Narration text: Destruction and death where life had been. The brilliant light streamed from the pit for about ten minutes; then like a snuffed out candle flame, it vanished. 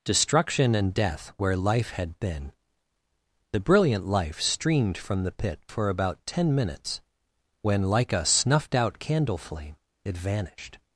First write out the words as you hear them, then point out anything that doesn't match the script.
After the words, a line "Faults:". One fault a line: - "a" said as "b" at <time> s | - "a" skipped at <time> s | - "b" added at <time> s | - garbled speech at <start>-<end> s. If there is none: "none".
Destruction and death where life had been. The brilliant life streamed from the pit for about ten minutes; when like a snuffed out candle flame, it vanished.
Faults:
- "light" said as "life" at 4.1 s
- "then" said as "when" at 7.6 s